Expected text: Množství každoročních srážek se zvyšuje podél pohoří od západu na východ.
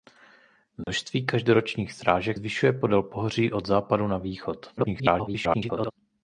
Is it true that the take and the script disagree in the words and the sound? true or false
true